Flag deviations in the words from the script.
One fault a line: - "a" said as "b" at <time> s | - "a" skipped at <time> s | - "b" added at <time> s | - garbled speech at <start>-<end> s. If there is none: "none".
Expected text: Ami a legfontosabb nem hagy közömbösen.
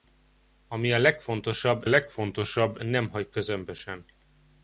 - "legfontosabb" added at 1.9 s